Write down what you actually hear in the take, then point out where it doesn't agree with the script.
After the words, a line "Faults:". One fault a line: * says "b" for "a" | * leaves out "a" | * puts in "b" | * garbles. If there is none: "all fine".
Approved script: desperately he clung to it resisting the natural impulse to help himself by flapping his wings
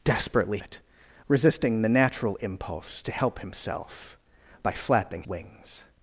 desperately it resisting the natural impulse to help himself by flapping wings
Faults:
* leaves out "he clung to"
* leaves out "his"